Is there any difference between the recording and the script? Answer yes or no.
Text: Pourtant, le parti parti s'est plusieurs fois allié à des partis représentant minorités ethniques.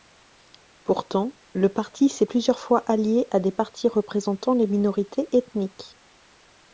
yes